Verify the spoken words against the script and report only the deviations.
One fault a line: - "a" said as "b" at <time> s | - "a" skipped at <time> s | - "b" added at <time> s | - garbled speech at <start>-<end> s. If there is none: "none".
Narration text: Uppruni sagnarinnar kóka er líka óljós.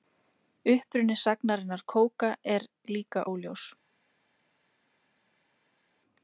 none